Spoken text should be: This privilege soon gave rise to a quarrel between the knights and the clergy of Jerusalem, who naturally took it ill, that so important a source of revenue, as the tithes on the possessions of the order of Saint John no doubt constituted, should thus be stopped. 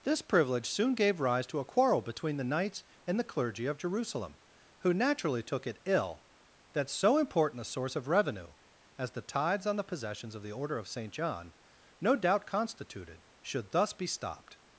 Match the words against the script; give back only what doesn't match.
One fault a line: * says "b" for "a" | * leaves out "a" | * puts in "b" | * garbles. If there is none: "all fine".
all fine